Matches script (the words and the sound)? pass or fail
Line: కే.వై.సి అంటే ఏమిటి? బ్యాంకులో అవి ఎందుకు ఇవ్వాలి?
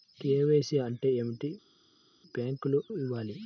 fail